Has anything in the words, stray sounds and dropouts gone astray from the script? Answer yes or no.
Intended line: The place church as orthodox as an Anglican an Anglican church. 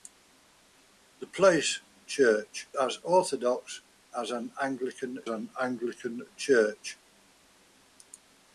no